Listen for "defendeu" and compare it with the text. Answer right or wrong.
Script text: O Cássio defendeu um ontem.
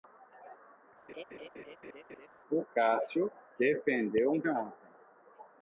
right